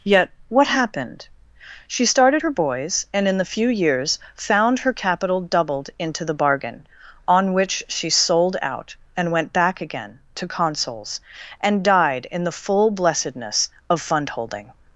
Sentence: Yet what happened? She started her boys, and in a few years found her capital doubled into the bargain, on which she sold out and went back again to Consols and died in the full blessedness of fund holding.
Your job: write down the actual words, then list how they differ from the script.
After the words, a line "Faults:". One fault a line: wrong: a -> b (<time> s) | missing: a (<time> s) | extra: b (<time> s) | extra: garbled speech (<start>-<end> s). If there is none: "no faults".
Yet what happened? She started her boys, and in the few years found her capital doubled into the bargain, on which she sold out and went back again to Consols and died in the full blessedness of fund holding.
Faults:
wrong: a -> the (3.4 s)